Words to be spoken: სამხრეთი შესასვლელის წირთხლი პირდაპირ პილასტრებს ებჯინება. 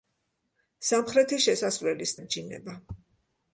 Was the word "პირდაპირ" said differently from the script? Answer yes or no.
yes